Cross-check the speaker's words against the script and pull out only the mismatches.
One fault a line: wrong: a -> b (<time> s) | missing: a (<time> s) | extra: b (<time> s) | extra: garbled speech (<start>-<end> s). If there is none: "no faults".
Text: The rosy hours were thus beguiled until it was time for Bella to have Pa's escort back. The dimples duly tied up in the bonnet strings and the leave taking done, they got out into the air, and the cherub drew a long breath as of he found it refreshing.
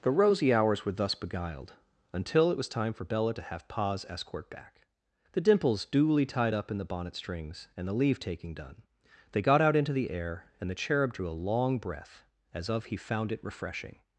no faults